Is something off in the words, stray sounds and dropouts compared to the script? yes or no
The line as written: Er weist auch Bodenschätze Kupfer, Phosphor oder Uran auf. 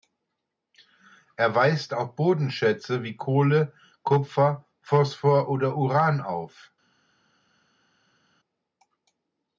yes